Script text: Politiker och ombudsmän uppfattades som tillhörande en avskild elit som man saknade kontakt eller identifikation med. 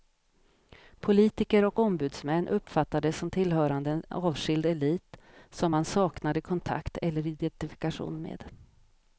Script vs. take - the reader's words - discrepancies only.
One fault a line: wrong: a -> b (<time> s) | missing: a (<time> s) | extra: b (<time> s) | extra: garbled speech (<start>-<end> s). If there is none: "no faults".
no faults